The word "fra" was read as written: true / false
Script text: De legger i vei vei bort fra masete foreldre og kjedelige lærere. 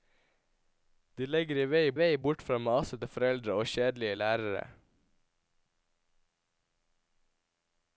true